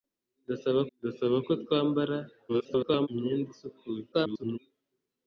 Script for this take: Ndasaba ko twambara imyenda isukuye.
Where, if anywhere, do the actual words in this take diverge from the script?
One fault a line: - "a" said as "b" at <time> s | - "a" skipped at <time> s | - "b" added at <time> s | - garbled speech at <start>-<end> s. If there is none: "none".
- "ndasaba" added at 1.0 s
- garbled speech at 2.5-3.1 s
- garbled speech at 4.1-4.6 s